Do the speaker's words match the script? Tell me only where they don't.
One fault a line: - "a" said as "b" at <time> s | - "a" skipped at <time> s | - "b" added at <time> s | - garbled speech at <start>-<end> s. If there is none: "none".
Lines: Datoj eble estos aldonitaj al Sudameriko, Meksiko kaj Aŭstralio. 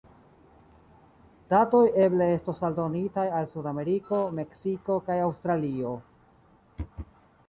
none